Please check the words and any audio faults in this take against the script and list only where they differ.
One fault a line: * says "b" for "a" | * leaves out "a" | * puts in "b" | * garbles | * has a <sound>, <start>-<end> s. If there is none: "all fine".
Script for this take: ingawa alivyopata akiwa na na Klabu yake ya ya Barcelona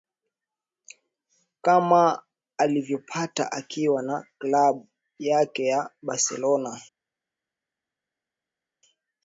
* says "kama" for "ingawa"
* leaves out "na"
* leaves out "ya"